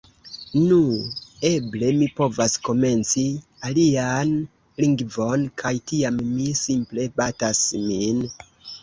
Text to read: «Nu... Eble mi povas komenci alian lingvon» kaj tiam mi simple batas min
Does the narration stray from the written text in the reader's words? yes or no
no